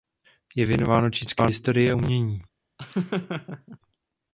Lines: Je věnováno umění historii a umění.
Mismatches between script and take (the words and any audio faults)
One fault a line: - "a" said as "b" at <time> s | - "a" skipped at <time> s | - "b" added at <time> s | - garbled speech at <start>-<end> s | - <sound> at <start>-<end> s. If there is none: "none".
- "umění" said as "čínské" at 1.1 s
- laugh at 2.8-3.8 s